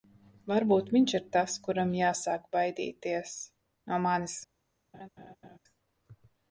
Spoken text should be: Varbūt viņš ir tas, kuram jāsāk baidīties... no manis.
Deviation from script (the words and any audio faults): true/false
true